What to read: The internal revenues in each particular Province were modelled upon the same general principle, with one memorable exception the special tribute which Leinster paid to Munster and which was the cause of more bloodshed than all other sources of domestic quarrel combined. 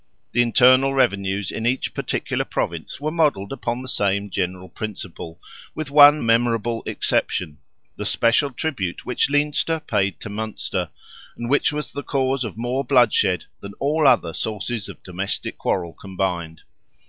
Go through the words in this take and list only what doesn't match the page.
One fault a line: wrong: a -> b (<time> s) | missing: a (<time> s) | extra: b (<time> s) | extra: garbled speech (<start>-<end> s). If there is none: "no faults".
no faults